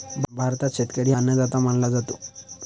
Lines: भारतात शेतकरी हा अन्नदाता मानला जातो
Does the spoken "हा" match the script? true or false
false